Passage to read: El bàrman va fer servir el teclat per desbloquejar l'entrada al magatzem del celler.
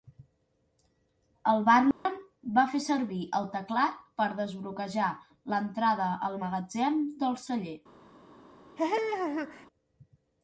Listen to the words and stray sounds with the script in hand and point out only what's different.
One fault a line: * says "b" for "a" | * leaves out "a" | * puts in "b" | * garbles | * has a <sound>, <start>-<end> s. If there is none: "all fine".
* has a dropout, 1.9-2.1 s
* has a laugh, 8.8-9.7 s